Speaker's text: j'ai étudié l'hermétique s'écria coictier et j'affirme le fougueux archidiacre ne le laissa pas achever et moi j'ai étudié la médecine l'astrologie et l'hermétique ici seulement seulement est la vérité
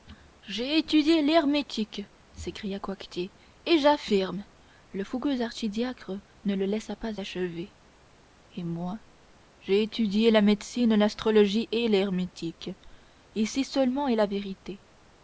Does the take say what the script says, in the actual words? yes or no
no